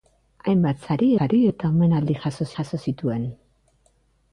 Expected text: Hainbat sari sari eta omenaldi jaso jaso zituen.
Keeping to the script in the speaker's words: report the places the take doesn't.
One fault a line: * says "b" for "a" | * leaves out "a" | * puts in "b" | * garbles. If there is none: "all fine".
all fine